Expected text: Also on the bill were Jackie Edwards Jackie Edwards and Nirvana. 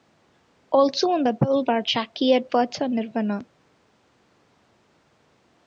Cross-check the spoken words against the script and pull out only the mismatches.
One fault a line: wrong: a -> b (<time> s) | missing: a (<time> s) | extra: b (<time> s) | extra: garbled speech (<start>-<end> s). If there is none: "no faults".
missing: Jackie Edwards (2.8 s)